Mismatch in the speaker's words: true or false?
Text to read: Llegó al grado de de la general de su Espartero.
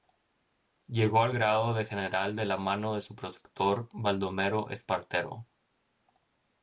true